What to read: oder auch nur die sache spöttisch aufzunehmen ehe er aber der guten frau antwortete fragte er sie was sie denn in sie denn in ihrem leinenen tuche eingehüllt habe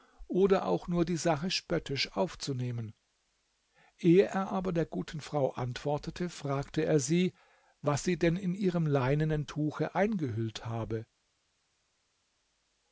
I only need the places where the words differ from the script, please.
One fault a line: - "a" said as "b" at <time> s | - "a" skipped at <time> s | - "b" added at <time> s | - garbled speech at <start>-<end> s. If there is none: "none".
- "sie denn in" skipped at 8.6 s